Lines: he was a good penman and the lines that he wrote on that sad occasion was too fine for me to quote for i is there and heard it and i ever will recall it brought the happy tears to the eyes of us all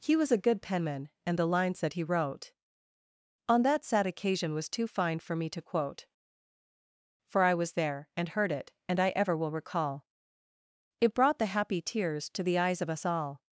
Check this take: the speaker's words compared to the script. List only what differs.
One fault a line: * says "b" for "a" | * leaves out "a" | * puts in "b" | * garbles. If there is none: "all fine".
* says "was" for "is"